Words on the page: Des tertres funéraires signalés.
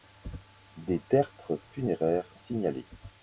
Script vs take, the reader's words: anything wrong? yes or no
no